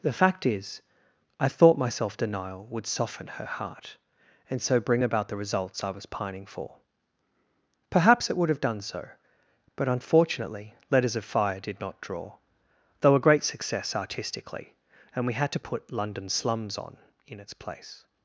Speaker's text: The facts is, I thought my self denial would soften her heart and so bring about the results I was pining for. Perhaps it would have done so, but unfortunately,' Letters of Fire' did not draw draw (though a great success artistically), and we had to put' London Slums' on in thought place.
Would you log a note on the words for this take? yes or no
yes